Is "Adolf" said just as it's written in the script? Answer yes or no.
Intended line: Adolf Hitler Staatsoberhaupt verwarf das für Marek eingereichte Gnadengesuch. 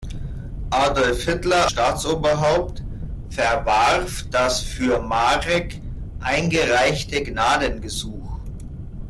yes